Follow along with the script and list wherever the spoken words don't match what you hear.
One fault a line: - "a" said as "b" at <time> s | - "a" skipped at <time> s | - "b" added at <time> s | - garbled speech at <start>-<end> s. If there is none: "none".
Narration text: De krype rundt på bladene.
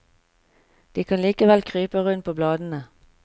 - "kan likevel" added at 1.0 s